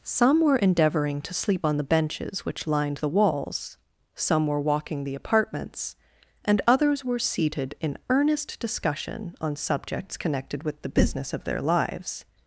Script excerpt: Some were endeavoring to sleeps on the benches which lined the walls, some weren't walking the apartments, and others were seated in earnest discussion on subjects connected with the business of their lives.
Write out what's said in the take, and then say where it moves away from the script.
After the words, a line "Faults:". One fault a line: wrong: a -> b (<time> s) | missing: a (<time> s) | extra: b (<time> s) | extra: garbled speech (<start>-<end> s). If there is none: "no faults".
Some were endeavoring to sleep on the benches which lined the walls, some were walking the apartments, and others were seated in earnest discussion on subjects connected with the business of their lives.
Faults:
wrong: sleeps -> sleep (1.3 s)
wrong: weren't -> were (4.5 s)